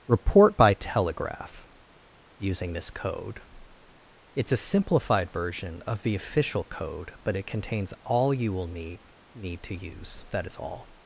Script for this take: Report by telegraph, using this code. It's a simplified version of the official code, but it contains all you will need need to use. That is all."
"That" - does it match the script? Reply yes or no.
yes